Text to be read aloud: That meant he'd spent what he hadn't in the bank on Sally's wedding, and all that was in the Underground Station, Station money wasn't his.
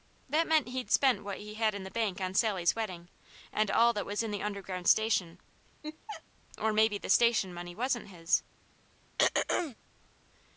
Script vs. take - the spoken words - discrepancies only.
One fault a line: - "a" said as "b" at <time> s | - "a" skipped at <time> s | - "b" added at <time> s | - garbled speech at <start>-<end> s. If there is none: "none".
- "hadn't" said as "had" at 1.5 s
- "or maybe the" added at 6.6 s